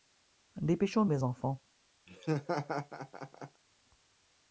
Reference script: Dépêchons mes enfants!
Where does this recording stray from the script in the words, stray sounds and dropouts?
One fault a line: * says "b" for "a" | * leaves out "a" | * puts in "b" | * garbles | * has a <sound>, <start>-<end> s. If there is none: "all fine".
* has a laugh, 2.1-3.6 s